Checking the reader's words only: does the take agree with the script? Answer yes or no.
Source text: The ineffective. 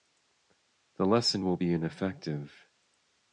no